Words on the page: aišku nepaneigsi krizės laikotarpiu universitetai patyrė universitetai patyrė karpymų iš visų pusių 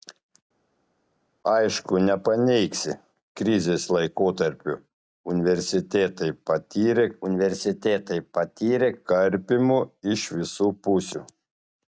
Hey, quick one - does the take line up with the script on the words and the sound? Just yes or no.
yes